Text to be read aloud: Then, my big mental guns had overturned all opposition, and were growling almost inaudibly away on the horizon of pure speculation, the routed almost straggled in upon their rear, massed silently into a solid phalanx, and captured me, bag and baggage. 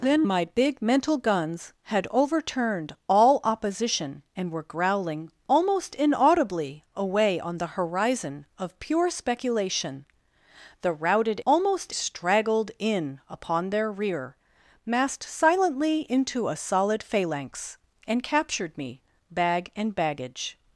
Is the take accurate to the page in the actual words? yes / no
yes